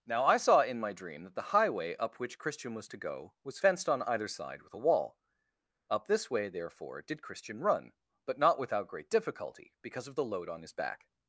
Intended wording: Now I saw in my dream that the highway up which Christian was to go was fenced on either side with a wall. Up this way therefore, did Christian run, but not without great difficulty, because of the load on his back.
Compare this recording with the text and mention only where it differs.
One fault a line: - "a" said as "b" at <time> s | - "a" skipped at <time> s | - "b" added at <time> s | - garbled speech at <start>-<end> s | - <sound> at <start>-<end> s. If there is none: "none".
none